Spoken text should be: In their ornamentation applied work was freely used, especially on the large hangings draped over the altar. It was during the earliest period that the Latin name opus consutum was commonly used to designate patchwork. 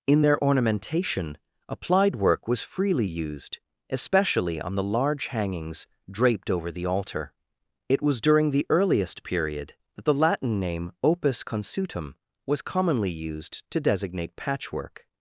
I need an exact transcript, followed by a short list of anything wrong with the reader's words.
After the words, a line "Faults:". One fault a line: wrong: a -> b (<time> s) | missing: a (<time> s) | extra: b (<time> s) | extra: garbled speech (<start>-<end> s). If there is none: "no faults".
In their ornamentation applied work was freely used, especially on the large hangings draped over the altar. It was during the earliest period that the Latin name opus consutum was commonly used to designate patchwork.
Faults:
no faults